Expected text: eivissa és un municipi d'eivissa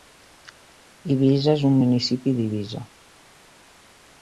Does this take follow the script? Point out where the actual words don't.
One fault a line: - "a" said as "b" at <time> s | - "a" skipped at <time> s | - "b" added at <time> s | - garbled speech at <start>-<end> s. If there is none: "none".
none